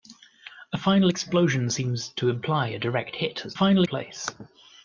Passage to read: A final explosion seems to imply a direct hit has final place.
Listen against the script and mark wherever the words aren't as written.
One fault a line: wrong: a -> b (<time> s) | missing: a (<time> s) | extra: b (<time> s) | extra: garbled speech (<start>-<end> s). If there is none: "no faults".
no faults